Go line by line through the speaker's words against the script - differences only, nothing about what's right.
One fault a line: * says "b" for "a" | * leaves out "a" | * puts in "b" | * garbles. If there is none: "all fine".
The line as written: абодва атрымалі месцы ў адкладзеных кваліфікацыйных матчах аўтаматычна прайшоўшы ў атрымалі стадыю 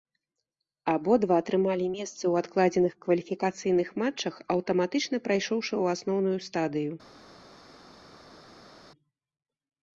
* says "асноўную" for "атрымалі"